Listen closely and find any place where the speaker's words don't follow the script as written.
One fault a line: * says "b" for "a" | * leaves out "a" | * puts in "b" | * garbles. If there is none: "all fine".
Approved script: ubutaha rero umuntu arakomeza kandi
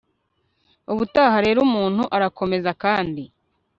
all fine